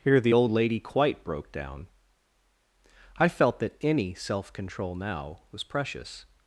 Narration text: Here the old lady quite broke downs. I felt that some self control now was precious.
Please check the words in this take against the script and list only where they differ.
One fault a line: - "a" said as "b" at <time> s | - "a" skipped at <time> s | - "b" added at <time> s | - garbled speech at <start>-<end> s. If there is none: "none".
- "downs" said as "down" at 1.5 s
- "some" said as "any" at 3.8 s